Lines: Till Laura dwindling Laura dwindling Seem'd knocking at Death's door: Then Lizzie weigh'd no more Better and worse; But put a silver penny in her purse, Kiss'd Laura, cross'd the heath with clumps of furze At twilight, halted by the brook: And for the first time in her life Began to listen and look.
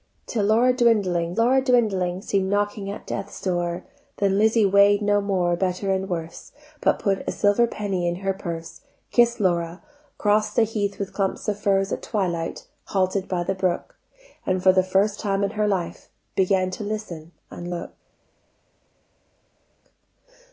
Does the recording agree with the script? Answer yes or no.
yes